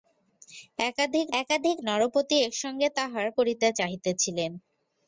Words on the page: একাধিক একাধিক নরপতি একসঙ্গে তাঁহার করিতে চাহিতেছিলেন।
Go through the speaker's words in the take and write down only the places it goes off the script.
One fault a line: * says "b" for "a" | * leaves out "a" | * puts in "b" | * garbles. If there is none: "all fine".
all fine